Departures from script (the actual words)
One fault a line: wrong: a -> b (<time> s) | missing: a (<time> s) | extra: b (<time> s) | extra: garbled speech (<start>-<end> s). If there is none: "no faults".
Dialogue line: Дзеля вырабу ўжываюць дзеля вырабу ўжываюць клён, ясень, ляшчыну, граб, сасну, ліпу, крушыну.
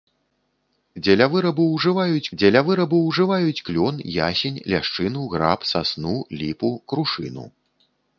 no faults